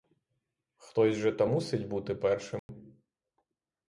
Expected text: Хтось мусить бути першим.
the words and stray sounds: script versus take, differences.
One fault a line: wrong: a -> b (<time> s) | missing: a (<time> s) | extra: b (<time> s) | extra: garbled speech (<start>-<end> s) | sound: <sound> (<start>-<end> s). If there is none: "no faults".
extra: же та (1.1 s)
sound: dropout (2.6-2.7 s)